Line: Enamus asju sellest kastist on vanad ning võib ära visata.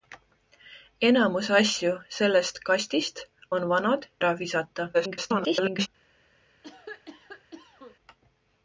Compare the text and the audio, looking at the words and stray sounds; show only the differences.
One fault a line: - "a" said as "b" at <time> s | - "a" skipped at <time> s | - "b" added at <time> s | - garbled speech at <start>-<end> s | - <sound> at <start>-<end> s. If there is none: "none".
- "ning võib" skipped at 4.1 s
- garbled speech at 4.9-5.9 s
- cough at 6.6-8.0 s